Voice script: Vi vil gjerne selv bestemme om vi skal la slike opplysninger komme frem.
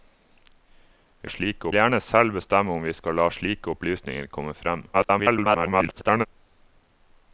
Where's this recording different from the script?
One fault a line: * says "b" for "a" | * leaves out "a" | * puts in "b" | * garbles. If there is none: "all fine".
* says "slike" for "vil"
* garbles